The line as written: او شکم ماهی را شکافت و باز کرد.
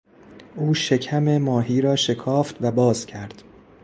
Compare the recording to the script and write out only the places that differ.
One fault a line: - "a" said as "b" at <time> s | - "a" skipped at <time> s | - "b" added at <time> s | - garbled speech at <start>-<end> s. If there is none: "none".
none